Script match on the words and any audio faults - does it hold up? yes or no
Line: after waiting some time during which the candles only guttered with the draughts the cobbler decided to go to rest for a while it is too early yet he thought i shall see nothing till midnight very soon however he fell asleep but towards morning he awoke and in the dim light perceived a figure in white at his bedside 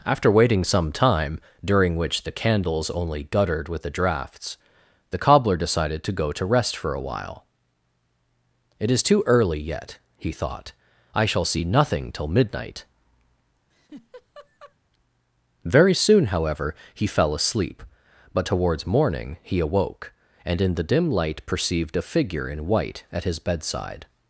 no